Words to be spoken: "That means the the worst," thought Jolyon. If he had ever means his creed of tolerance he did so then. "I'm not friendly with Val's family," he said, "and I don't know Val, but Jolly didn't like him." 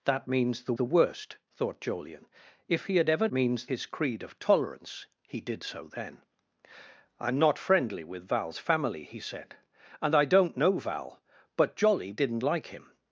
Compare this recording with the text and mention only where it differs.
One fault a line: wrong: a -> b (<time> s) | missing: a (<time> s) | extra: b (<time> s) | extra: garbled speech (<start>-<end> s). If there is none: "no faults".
no faults